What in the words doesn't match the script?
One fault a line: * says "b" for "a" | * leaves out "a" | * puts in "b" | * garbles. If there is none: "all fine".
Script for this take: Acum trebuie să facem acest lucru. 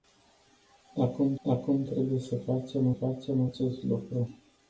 * puts in "acum"
* puts in "facem"